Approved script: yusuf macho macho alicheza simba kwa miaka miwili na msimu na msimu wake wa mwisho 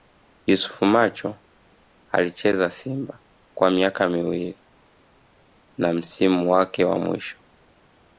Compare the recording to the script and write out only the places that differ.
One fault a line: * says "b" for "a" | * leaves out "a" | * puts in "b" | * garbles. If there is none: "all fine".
* leaves out "macho"
* leaves out "na msimu"